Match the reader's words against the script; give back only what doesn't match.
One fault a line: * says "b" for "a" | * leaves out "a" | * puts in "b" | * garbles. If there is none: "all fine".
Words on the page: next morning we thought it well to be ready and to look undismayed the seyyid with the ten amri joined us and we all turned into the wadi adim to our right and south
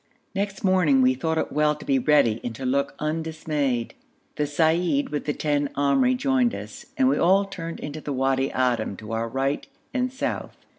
all fine